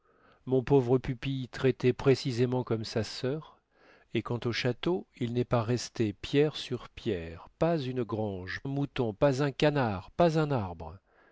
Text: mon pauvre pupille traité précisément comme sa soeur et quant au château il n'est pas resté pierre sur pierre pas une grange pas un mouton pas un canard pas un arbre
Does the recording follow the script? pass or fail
fail